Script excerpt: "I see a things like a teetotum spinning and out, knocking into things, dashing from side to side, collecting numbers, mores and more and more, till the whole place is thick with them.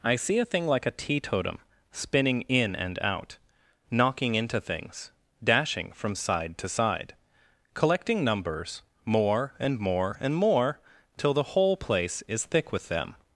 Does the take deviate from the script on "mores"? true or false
true